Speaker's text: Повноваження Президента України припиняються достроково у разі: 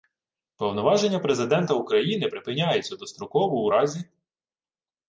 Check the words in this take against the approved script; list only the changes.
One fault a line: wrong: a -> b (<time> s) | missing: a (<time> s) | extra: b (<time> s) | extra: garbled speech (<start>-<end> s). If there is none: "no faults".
no faults